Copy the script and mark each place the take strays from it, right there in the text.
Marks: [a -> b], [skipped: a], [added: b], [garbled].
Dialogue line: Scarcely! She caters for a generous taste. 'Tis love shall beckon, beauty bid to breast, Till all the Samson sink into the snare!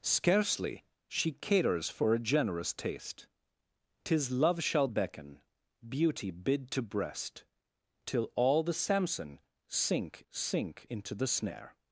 Scarcely! She caters for a generous taste. 'Tis love shall beckon, beauty bid to breast, Till all the Samson sink [added: sink] into the snare!